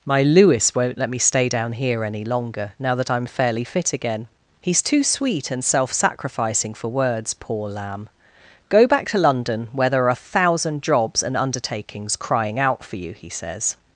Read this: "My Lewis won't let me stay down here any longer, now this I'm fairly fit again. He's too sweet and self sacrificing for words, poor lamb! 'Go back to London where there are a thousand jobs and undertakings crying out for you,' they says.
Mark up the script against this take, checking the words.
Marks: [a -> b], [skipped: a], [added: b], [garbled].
"My Lewis won't let me stay down here any longer, now [this -> that] I'm fairly fit again. He's too sweet and self sacrificing for words, poor lamb! 'Go back to London where there are a thousand jobs and undertakings crying out for you,' [they -> he] says.